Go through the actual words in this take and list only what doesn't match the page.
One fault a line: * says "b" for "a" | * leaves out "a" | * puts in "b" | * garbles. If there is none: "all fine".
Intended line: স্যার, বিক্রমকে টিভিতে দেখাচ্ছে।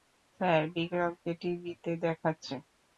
all fine